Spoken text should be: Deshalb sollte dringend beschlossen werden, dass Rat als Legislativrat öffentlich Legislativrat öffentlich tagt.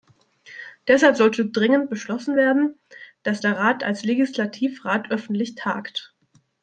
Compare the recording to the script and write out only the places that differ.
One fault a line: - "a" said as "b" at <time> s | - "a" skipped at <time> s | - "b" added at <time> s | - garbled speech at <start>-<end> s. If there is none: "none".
- "der" added at 3.4 s
- "Legislativrat öffentlich" skipped at 5.5 s